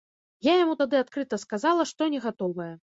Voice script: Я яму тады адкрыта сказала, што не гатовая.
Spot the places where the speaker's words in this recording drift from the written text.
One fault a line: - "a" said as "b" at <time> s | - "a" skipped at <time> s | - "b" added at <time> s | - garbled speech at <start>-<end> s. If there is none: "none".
none